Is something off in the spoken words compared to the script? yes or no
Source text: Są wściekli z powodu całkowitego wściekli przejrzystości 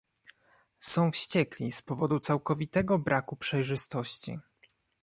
yes